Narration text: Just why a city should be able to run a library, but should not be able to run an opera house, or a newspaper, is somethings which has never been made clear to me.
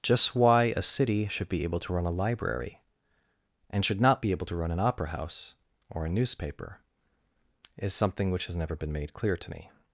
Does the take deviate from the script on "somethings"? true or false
true